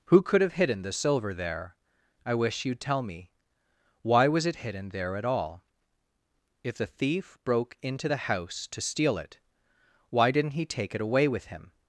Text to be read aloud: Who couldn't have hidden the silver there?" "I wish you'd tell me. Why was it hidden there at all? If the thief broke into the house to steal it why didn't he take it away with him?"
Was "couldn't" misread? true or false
true